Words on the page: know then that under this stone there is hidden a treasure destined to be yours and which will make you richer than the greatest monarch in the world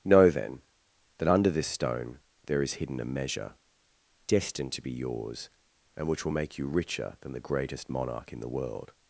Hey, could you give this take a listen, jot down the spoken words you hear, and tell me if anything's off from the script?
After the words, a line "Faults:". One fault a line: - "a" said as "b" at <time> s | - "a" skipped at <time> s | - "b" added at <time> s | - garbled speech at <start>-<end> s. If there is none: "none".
know then that under this stone there is hidden a measure destined to be yours and which will make you richer than the greatest monarch in the world
Faults:
- "treasure" said as "measure" at 3.0 s